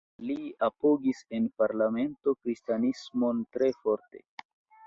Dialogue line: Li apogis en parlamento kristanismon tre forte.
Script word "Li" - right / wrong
right